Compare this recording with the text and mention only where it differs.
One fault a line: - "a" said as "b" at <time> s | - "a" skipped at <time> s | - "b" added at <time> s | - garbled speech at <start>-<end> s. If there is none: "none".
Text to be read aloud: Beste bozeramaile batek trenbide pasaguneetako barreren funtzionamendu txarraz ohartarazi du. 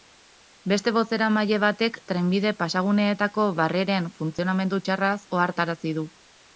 none